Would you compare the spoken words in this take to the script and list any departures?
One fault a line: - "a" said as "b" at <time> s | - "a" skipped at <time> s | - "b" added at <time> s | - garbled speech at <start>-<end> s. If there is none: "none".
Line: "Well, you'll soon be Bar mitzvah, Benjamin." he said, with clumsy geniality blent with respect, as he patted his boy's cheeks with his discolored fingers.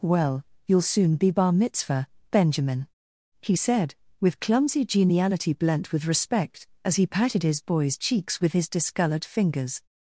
none